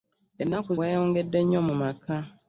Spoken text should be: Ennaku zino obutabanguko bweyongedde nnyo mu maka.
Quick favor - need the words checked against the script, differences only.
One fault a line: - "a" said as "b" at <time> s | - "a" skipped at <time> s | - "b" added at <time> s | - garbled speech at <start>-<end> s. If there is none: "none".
- "zino obutabanguko" skipped at 0.7 s